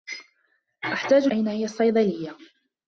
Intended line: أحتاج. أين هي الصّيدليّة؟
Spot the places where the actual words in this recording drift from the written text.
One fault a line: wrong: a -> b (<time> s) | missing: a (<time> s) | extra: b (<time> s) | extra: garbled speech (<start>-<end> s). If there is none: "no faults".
no faults